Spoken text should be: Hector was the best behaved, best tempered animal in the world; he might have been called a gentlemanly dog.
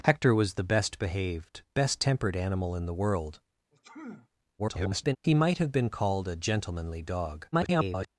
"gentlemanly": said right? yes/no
yes